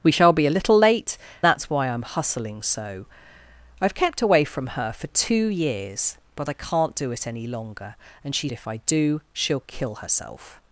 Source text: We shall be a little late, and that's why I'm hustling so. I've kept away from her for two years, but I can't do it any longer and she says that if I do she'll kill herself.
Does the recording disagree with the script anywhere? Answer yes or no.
yes